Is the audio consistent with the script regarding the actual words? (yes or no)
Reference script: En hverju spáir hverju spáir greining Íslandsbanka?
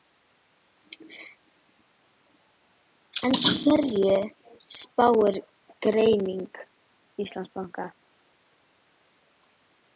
no